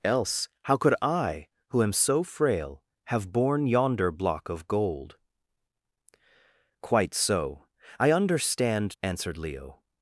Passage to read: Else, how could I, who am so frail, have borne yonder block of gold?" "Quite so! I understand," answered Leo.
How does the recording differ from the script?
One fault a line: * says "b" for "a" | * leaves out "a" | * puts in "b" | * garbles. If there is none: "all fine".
all fine